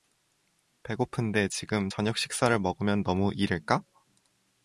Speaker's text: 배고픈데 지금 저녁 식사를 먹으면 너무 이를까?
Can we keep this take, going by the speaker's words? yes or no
yes